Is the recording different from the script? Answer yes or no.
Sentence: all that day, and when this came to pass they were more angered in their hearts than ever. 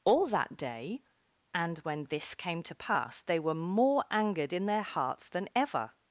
no